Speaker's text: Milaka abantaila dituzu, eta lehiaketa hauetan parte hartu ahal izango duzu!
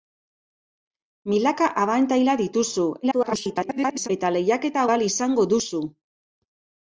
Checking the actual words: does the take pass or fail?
fail